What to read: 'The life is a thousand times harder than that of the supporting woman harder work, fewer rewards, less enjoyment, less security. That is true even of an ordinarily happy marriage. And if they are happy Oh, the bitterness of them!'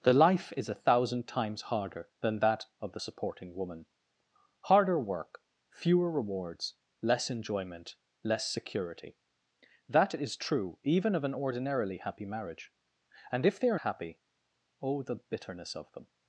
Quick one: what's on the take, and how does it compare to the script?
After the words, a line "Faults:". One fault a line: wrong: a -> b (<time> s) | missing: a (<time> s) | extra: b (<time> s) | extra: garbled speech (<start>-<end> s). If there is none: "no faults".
'The life is a thousand times harder than that of the supporting woman harder work, fewer rewards, less enjoyment, less security. That is true even of an ordinarily happy marriage. And if they are happy Oh, the bitterness of them!'
Faults:
no faults